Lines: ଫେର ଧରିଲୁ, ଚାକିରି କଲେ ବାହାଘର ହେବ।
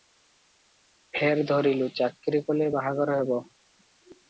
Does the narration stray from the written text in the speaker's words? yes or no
no